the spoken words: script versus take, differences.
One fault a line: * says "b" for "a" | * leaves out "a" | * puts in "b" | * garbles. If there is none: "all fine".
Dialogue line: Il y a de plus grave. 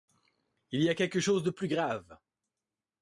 * puts in "quelque chose"